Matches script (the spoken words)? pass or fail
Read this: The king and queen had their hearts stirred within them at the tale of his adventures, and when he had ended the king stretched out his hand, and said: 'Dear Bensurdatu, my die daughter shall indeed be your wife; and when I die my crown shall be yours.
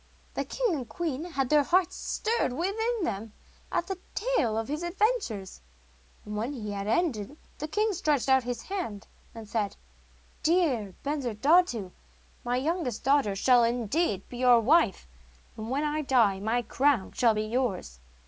fail